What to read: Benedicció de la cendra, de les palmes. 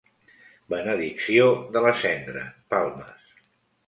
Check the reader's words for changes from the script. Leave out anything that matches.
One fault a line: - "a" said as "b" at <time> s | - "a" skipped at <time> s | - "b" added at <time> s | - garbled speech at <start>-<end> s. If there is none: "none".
- "de les" skipped at 2.5 s